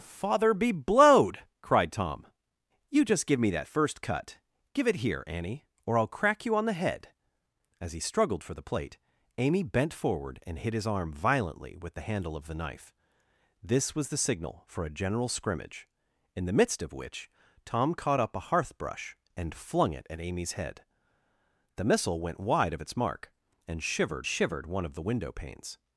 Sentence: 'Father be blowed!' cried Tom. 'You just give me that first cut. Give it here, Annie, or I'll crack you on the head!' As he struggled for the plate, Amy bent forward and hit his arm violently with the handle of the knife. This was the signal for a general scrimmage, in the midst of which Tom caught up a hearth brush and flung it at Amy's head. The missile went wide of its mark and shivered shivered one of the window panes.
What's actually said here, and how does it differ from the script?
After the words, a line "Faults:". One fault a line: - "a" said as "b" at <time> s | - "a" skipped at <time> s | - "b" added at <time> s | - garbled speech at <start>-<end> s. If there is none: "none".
'Father be blowed!' cried Tom. 'You just give me that first cut. Give it here, Annie, or I'll crack you on the head!' As he struggled for the plate, Amy bent forward and hit his arm violently with the handle of the knife. This was the signal for a general scrimmage, in the midst of which Tom caught up a hearth brush and flung it at Amy's head. The missile went wide of its mark and shivered shivered one of the window panes.
Faults:
none